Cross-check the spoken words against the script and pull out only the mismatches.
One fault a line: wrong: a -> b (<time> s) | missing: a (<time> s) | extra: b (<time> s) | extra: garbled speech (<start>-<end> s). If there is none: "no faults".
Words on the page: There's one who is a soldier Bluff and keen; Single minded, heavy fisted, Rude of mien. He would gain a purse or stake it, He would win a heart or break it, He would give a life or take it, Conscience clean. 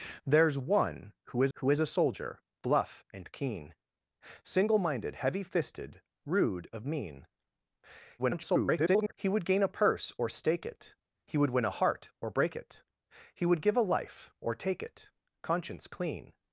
extra: who is (1.5 s)
extra: garbled speech (8.2-9.1 s)